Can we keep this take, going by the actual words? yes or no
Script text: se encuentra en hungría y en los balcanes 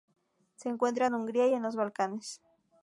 yes